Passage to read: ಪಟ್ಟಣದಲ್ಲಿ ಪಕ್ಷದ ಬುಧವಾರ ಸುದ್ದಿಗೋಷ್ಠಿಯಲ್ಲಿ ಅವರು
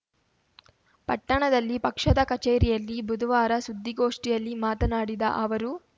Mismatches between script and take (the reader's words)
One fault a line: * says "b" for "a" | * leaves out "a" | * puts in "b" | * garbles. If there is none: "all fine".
* puts in "ಕಚೇರಿಯಲ್ಲಿ"
* puts in "ಮಾತನಾಡಿದ"